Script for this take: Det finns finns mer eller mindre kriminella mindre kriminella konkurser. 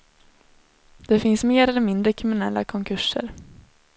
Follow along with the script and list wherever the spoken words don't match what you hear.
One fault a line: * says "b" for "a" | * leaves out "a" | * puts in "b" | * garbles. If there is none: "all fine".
* leaves out "finns"
* leaves out "mindre kriminella"